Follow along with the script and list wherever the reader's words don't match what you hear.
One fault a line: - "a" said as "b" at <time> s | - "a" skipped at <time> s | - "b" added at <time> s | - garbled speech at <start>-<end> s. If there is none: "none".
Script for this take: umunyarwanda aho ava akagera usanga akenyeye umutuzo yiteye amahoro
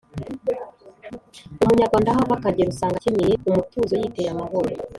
none